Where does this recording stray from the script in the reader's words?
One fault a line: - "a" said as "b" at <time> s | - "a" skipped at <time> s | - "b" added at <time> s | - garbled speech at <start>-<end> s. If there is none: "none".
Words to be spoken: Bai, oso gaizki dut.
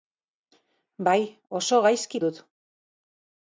none